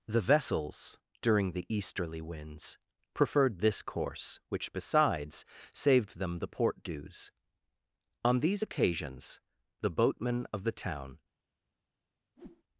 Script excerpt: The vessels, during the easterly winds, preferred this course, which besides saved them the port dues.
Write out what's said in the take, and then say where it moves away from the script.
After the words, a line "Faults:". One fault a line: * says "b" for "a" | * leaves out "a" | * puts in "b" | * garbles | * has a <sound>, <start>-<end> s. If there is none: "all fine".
The vessels, during the easterly winds, preferred this course, which besides saved them the port dues. On these occasions the boatmen of the town
Faults:
* puts in "On these occasions the boatmen of the town"
* has a whoosh, 12.4-12.6 s